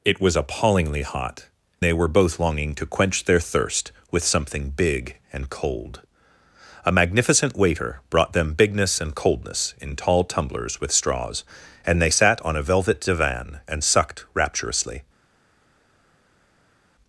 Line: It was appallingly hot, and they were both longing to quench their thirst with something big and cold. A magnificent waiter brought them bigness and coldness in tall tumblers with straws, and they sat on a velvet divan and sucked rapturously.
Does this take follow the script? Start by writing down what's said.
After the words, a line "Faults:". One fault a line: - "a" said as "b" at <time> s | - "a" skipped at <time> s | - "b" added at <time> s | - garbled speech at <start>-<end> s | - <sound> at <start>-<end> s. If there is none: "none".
It was appallingly hot, they were both longing to quench their thirst with something big and cold. A magnificent waiter brought them bigness and coldness in tall tumblers with straws, and they sat on a velvet divan and sucked rapturously.
Faults:
- "and" skipped at 1.5 s